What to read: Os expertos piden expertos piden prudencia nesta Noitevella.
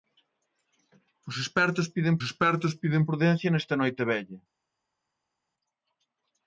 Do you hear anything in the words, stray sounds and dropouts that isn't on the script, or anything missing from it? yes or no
no